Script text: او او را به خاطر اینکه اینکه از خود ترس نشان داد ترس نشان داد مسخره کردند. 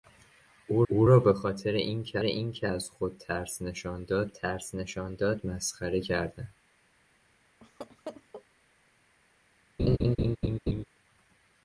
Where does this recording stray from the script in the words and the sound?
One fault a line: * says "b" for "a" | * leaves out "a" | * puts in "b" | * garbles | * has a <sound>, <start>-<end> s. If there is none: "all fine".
* has a laugh, 7.6-8.4 s
* has a laugh, 9.8-10.8 s